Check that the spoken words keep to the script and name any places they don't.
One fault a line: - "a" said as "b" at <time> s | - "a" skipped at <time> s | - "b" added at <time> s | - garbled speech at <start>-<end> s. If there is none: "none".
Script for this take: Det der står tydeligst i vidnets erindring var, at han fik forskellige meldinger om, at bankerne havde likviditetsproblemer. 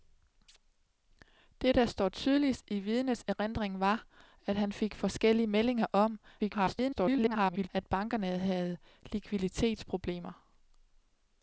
- garbled speech at 6.4-7.7 s